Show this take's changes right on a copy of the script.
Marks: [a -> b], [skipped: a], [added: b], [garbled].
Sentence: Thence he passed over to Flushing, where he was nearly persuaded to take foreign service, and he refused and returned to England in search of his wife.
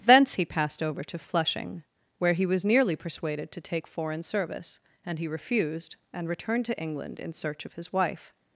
Thence he passed over to Flushing, where he was nearly persuaded to take foreign service, and he refused and returned to England in search of his wife.